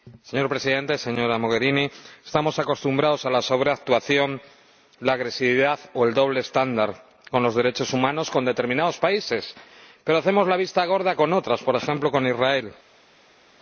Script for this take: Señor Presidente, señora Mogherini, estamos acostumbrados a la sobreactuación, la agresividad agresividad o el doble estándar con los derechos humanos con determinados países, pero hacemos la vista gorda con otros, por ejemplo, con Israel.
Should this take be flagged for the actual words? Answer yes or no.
yes